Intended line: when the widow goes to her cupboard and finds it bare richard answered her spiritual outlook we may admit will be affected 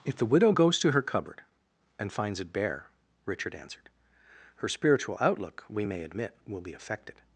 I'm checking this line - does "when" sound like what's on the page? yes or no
no